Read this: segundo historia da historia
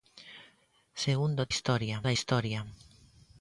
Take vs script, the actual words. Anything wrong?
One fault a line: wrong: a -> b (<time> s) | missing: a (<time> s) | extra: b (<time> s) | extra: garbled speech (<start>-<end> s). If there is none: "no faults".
no faults